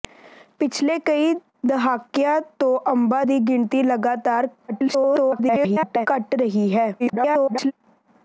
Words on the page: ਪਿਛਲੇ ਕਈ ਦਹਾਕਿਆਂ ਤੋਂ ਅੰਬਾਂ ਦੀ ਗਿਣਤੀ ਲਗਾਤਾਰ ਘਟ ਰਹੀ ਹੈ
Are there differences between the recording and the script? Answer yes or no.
yes